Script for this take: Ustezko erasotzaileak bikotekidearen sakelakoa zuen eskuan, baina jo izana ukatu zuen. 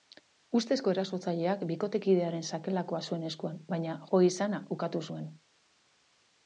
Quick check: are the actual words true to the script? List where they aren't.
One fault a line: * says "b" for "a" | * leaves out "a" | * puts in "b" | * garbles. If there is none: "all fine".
all fine